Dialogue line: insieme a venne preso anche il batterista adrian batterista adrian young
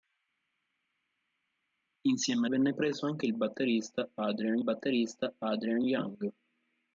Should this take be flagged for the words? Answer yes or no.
no